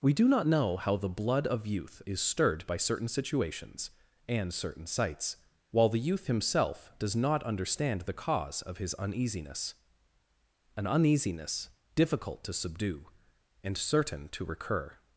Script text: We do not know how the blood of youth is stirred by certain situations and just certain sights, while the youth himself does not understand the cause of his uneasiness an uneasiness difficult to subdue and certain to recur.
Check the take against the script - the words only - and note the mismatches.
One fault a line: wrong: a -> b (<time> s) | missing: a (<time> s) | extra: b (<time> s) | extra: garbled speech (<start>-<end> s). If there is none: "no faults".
missing: just (4.5 s)